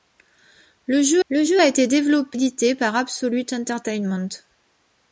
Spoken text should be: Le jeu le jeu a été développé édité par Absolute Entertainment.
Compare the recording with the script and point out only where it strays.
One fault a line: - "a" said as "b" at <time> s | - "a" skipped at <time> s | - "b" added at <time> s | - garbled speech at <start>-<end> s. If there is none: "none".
none